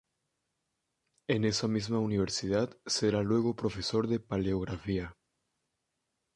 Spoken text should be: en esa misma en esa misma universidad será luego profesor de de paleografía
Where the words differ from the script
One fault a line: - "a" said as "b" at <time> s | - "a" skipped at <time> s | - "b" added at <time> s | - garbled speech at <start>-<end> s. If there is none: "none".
- "en esa misma" skipped at 2.0 s
- "de" skipped at 4.2 s